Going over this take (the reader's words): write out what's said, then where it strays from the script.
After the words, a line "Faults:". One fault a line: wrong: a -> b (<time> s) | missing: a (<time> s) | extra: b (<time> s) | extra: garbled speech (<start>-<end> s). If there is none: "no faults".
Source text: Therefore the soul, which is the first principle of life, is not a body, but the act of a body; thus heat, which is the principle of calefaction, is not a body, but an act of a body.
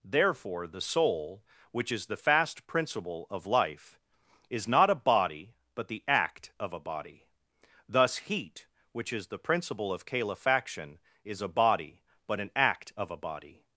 Therefore the soul, which is the fast principle of life, is not a body, but the act of a body; thus heat, which is the principle of calefaction, is a body, but an act of a body.
Faults:
wrong: first -> fast (2.2 s)
missing: not (11.4 s)